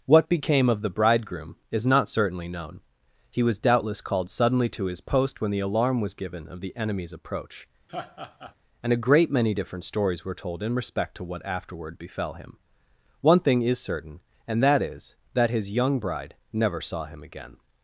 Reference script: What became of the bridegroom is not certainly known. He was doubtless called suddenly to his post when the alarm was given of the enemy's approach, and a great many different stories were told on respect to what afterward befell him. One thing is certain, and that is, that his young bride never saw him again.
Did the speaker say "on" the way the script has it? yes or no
no